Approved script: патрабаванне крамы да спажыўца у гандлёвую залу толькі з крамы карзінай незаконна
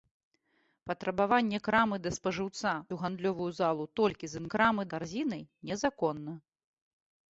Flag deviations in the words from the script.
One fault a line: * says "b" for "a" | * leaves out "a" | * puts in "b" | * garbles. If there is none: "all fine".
all fine